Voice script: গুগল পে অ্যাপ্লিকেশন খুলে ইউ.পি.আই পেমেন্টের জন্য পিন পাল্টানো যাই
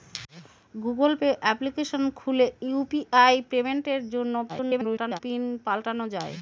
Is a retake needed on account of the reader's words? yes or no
yes